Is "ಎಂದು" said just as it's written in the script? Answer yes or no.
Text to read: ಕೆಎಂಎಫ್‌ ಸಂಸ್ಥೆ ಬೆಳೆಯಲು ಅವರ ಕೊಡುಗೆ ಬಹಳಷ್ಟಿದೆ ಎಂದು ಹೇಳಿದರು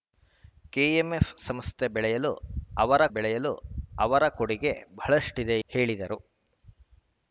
no